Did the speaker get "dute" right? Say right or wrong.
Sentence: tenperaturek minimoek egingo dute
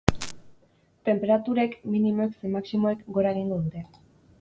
right